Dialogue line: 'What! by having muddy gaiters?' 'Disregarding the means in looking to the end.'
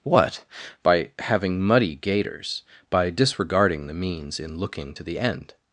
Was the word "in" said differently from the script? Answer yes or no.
no